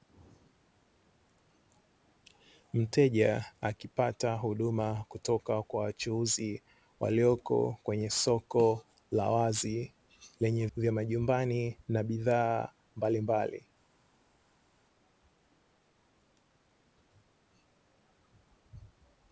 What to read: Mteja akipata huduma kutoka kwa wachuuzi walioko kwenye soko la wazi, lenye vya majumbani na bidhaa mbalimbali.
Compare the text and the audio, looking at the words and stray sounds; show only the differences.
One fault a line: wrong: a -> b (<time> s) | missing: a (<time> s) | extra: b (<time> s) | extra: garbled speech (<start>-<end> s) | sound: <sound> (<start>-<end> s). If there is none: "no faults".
no faults